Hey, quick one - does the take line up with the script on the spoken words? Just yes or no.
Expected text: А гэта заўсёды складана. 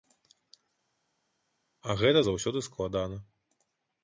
yes